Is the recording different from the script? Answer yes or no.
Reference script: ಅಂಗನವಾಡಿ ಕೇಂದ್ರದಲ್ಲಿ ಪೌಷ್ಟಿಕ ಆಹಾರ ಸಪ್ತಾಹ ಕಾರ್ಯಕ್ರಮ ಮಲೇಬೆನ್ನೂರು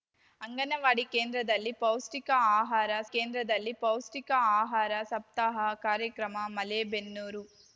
yes